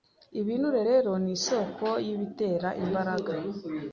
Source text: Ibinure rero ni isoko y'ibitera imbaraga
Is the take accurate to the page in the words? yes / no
yes